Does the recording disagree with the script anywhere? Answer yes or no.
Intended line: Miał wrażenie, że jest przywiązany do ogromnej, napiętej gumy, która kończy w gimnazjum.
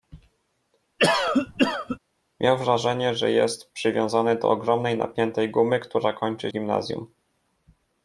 no